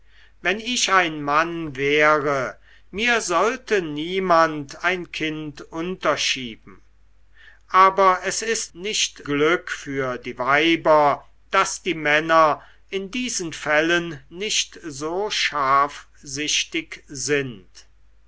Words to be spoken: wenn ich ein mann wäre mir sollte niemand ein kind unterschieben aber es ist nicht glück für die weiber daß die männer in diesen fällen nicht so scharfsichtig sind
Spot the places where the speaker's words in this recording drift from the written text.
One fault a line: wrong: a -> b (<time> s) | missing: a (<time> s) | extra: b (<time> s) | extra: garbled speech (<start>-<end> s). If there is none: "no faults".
no faults